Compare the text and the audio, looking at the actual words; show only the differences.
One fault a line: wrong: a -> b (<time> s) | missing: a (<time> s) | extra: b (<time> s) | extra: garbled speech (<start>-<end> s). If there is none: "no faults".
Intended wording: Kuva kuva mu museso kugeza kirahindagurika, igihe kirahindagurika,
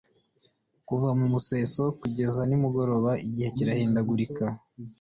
missing: kuva (1.1 s)
wrong: kirahindagurika -> nimugoroba (2.5 s)